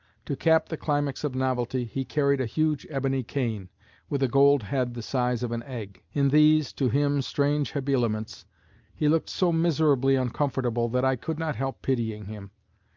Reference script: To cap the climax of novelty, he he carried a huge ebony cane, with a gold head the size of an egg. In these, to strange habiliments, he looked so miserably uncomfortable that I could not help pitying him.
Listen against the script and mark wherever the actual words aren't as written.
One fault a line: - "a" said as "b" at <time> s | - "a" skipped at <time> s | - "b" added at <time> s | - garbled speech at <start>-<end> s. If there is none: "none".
- "he" skipped at 2.0 s
- "him" added at 6.9 s